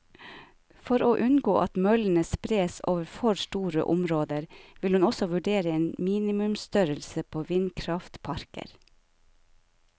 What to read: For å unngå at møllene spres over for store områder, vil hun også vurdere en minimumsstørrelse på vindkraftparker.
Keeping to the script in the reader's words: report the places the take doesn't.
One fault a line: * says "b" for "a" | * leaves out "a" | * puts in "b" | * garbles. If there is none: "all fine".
all fine